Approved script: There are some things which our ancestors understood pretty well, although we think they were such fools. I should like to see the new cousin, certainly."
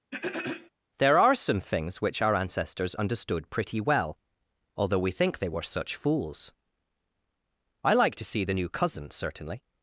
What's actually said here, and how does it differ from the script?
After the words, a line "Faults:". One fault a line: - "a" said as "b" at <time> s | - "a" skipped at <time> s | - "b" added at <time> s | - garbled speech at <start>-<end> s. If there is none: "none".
There are some things which our ancestors understood pretty well, although we think they were such fools. I like to see the new cousin, certainly."
Faults:
- "should" skipped at 7.9 s